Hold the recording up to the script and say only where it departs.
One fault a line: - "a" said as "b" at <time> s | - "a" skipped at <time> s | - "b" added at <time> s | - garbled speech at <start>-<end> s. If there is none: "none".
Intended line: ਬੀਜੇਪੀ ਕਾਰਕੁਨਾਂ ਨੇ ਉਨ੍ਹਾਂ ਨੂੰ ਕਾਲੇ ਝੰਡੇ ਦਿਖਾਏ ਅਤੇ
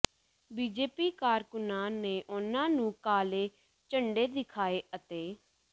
none